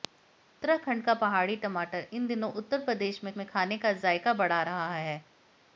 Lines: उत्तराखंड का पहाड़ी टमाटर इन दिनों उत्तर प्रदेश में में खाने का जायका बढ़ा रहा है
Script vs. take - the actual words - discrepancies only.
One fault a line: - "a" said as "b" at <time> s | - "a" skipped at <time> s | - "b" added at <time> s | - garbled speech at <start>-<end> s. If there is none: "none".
none